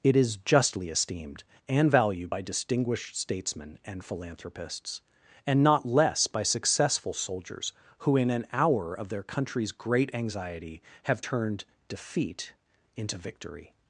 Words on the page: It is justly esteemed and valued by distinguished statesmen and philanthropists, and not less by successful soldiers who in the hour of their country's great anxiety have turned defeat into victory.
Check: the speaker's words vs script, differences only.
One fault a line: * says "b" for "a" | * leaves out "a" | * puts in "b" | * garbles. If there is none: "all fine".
* says "an" for "the"